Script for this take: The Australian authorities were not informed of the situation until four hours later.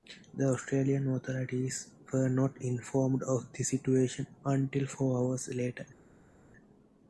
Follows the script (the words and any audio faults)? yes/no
yes